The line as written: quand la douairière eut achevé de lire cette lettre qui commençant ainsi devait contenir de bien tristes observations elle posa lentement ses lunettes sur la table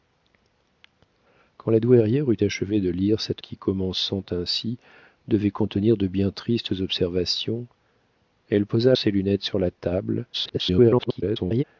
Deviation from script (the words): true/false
true